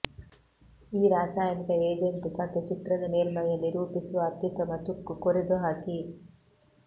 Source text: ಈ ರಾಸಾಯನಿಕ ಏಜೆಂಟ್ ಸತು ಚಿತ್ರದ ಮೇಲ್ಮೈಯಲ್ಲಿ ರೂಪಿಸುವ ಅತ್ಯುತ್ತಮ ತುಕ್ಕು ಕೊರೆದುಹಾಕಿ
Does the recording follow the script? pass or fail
pass